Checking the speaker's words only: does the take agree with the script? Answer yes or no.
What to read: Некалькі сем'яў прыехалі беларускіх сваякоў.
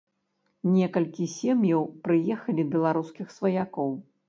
yes